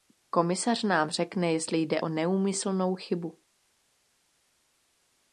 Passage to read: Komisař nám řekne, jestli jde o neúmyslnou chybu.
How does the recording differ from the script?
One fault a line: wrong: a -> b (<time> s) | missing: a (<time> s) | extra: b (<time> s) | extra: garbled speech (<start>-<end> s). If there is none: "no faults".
no faults